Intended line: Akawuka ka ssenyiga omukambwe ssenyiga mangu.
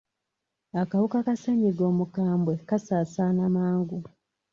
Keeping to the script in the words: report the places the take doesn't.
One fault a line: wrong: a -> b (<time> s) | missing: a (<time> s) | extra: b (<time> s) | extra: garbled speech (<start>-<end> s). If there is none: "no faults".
wrong: ssenyiga -> kasaasaana (2.7 s)